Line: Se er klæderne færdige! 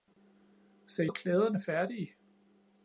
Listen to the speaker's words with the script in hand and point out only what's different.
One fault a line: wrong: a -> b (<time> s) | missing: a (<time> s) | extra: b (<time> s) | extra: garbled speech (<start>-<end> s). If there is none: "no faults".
no faults